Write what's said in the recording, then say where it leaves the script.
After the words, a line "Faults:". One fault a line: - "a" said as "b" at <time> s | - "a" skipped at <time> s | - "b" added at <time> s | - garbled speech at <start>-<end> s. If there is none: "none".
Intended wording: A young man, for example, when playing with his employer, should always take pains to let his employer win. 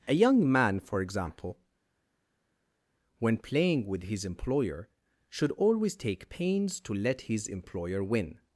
A young man, for example, when playing with his employer, should always take pains to let his employer win.
Faults:
none